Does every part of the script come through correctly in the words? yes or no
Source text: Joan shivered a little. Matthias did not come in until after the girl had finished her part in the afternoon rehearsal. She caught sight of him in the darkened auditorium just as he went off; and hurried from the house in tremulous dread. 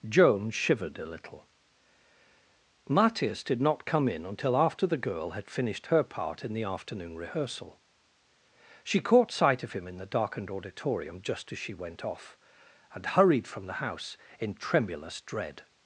no